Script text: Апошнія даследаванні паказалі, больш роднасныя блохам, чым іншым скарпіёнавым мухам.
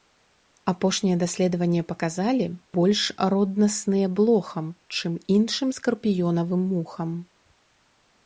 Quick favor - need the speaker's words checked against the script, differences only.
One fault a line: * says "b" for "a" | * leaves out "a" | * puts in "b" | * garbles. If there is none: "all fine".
all fine